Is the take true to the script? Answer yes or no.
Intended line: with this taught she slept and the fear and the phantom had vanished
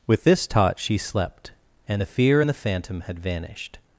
yes